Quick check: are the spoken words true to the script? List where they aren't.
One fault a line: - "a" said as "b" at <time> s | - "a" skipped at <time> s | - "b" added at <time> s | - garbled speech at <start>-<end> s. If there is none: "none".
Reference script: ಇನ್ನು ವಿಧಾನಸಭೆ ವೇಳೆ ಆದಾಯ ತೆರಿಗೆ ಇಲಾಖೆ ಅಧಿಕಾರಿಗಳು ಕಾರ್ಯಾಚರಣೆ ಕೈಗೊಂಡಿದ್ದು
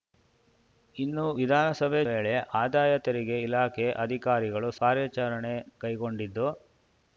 none